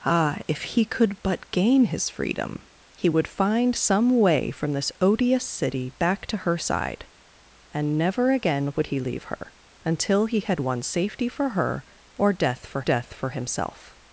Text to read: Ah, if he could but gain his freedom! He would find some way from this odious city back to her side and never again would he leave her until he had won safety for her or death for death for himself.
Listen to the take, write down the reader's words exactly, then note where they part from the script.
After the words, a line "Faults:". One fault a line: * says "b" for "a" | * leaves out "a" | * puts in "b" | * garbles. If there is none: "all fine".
Ah, if he could but gain his freedom! He would find some way from this odious city back to her side and never again would he leave her until he had won safety for her or death for death for himself.
Faults:
all fine